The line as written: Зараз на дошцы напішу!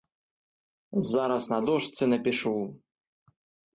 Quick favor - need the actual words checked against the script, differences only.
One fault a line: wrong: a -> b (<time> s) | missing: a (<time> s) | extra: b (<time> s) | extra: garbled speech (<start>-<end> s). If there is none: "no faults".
no faults